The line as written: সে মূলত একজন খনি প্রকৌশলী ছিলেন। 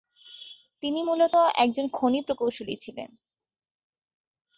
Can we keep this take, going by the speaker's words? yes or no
no